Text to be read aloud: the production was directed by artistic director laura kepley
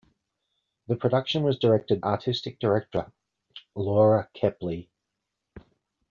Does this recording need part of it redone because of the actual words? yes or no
yes